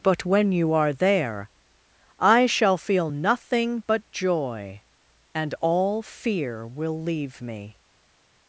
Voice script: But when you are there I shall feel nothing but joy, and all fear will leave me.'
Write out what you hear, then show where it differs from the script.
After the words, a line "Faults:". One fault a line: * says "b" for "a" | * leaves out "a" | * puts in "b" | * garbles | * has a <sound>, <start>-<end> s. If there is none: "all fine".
But when you are there I shall feel nothing but joy, and all fear will leave me.'
Faults:
all fine